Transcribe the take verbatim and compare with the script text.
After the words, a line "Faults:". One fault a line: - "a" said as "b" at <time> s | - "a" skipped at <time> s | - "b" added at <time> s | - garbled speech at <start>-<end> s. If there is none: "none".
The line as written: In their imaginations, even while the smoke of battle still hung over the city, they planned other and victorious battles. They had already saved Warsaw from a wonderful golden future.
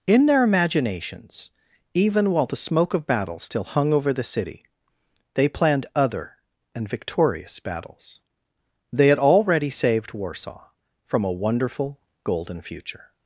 In their imaginations, even while the smoke of battle still hung over the city, they planned other and victorious battles. They had already saved Warsaw from a wonderful golden future.
Faults:
none